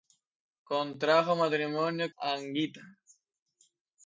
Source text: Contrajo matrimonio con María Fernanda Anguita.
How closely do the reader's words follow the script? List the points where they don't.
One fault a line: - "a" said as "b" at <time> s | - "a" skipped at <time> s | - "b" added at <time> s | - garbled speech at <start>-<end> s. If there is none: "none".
- "con María Fernanda" skipped at 2.1 s